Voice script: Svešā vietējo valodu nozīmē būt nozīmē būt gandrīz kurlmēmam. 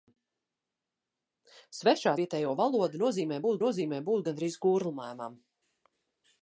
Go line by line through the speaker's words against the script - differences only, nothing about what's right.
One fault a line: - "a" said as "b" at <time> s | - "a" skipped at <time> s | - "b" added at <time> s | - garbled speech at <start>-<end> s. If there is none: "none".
none